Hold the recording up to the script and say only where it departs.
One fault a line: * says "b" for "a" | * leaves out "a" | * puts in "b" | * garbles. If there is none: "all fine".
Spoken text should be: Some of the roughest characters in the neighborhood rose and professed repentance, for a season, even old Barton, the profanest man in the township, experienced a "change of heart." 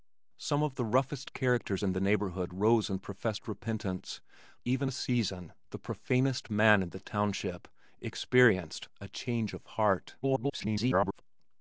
* says "even" for "for"
* leaves out "even old Barton"
* garbles